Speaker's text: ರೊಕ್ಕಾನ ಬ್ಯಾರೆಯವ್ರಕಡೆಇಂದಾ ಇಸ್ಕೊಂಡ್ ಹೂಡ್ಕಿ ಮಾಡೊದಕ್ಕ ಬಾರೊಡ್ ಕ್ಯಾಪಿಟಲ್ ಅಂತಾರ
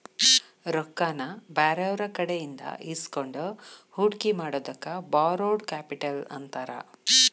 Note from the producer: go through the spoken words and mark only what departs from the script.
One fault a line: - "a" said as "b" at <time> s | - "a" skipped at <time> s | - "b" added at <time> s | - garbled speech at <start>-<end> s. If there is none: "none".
none